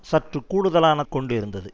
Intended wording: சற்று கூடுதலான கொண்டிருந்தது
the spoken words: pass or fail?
pass